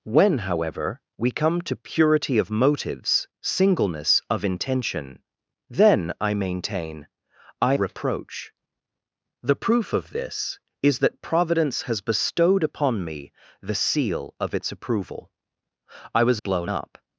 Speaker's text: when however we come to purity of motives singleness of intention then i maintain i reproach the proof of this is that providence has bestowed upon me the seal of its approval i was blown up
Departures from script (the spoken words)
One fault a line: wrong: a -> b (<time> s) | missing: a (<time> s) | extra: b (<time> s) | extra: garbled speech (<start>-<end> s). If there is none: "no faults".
no faults